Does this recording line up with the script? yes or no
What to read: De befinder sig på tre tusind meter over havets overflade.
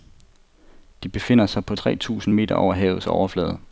yes